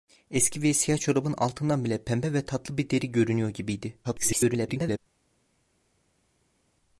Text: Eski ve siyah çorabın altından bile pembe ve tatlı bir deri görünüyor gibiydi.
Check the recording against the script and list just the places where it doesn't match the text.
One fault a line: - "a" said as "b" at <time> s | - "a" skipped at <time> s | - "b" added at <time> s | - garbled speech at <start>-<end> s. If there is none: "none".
- garbled speech at 4.0-5.0 s